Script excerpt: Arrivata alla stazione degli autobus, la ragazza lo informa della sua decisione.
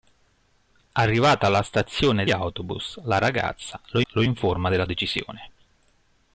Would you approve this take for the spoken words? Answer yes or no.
no